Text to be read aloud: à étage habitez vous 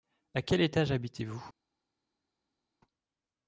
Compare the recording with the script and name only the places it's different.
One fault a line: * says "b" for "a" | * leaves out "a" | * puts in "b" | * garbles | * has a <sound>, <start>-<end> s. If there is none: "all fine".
* puts in "quel"